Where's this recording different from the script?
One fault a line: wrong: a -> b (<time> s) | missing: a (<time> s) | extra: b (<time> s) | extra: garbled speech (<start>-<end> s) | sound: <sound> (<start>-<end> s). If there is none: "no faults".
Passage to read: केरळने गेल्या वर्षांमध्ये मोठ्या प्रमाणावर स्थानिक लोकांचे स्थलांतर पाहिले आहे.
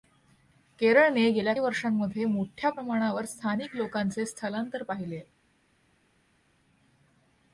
no faults